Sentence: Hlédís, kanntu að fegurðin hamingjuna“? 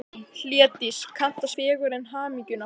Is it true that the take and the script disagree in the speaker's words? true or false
false